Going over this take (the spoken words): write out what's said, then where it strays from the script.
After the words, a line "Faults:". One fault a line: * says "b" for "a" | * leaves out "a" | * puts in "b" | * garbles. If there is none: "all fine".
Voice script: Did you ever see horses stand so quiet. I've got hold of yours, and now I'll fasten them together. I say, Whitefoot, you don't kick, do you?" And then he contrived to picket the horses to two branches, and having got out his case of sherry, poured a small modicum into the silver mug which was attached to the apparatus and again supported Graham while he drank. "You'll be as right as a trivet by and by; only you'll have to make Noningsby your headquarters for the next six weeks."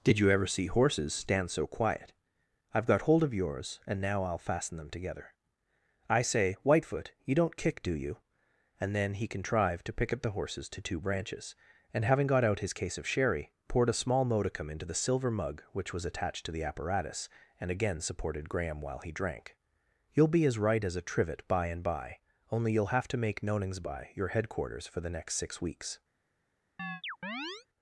Did you ever see horses stand so quiet. I've got hold of yours, and now I'll fasten them together. I say, Whitefoot, you don't kick, do you?" And then he contrived to pick up the horses to two branches, and having got out his case of sherry, poured a small modicum into the silver mug which was attached to the apparatus and again supported Graham while he drank. "You'll be as right as a trivet by and by; only you'll have to make Noningsby your headquarters for the next six weeks."
Faults:
* says "pick up" for "picket"